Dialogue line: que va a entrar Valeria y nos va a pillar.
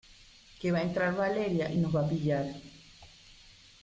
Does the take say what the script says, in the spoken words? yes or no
yes